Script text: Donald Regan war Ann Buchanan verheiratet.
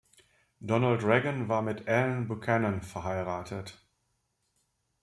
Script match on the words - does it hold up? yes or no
no